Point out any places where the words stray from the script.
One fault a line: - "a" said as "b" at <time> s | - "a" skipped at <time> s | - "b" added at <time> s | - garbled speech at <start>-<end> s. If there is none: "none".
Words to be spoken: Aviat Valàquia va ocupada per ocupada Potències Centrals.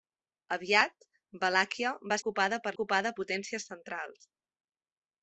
none